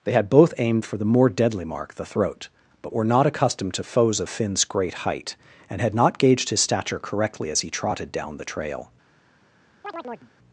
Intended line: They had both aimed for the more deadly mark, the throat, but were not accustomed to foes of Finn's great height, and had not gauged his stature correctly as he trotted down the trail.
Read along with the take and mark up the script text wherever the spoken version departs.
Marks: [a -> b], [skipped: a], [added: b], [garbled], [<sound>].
They had both aimed for the more deadly mark, the throat, but were not accustomed to foes of Finn's great height, and had not gauged his stature correctly as he trotted down the trail. [chirp]